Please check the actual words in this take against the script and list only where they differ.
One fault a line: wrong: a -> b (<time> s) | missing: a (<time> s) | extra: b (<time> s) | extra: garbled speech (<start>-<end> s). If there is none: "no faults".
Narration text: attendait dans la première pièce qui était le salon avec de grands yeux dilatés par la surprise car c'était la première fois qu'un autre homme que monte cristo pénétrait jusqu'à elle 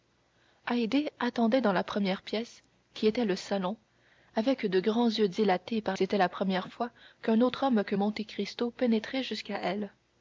missing: la surprise car (6.0 s)